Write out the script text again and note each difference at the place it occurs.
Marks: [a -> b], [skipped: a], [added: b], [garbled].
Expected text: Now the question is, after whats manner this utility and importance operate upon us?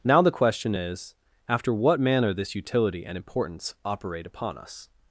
Now the question is, after [whats -> what] manner this utility and importance operate upon us?